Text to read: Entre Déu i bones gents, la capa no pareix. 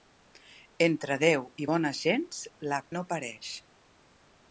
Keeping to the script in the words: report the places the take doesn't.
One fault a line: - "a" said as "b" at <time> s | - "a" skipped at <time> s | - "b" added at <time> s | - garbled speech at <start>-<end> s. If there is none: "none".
- "capa" skipped at 2.8 s